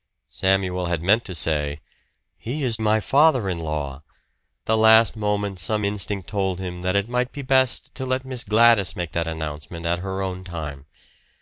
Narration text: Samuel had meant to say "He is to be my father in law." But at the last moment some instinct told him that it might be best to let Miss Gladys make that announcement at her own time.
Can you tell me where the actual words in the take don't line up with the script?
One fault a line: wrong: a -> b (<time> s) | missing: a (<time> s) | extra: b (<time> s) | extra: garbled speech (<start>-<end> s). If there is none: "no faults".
missing: to be (2.8 s)
missing: But at (4.0 s)